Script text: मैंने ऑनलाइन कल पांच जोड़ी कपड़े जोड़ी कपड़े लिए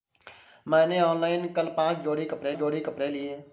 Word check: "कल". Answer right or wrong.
right